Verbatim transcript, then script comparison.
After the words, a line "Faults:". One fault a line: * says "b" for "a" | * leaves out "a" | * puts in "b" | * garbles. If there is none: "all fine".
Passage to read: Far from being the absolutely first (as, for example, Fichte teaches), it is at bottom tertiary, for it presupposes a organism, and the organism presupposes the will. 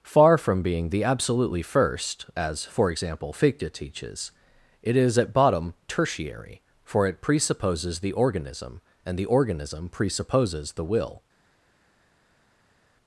Far from being the absolutely first (as, for example, Fichte teaches), it is at bottom tertiary, for it presupposes the organism, and the organism presupposes the will.
Faults:
* says "the" for "a"